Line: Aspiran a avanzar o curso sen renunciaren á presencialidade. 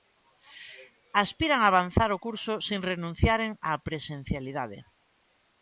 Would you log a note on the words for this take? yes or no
no